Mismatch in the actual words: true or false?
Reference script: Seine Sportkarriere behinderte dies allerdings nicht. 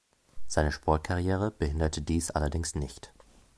false